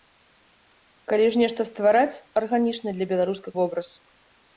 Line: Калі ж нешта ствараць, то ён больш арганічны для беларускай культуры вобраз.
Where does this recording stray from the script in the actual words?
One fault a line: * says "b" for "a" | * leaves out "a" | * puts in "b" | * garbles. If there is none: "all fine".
* leaves out "то ён больш"
* leaves out "культуры"